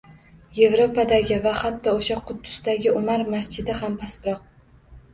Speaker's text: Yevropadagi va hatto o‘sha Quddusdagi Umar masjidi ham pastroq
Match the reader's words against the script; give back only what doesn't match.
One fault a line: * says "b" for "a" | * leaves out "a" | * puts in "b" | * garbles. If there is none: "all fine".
all fine